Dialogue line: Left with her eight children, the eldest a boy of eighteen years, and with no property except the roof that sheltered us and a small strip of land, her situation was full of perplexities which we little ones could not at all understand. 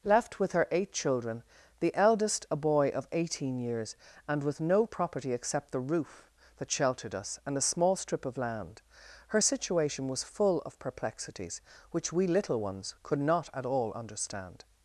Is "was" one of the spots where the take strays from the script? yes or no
no